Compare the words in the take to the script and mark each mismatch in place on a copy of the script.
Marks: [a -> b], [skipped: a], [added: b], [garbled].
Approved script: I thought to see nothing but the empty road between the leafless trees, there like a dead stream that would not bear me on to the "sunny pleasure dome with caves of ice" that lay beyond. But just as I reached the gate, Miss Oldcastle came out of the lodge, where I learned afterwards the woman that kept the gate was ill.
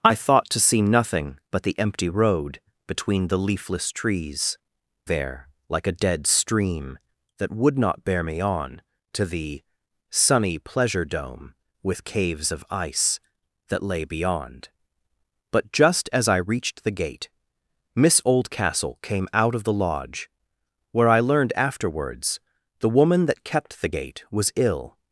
I thought to see nothing but the empty road between the leafless trees, there like a dead stream that would not bear me on to the "sunny pleasure dome with caves of ice" that lay beyond. But just as I reached the gate, Miss Oldcastle came out of the lodge, where I learned afterwards the woman that kept the gate was ill.